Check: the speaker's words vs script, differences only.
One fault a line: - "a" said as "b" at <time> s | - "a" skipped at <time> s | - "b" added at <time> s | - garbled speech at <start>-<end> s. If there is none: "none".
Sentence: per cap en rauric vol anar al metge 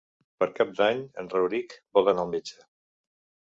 - "d'any" added at 0.8 s